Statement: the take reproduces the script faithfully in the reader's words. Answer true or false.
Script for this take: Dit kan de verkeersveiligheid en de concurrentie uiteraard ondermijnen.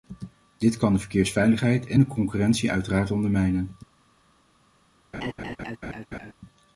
true